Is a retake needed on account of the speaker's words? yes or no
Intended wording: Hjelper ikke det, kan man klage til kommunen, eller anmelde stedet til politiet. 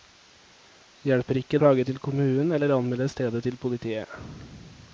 yes